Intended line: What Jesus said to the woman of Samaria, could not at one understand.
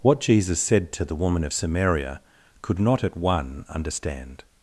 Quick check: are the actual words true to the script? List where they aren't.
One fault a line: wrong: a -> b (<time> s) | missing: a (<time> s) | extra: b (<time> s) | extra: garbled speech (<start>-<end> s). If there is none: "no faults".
no faults